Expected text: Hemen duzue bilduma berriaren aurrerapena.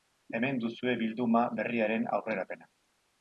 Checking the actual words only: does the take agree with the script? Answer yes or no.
yes